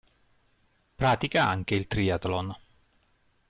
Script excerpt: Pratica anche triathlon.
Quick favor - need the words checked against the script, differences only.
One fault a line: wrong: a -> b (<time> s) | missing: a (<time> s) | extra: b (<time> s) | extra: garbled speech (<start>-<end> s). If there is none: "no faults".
extra: il (1.7 s)